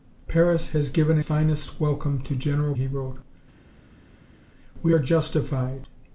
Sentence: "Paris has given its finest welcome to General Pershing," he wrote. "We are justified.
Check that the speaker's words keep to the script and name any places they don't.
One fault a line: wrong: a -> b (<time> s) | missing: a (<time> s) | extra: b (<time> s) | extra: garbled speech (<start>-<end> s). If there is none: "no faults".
missing: its (1.2 s)
missing: Pershing (2.7 s)